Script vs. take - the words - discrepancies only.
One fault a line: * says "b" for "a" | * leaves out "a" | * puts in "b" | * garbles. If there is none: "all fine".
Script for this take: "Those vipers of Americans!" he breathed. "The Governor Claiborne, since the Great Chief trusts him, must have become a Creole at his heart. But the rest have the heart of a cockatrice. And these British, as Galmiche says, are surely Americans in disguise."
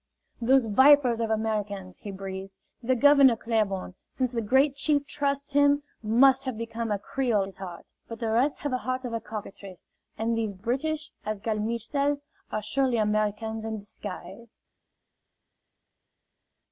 * leaves out "at"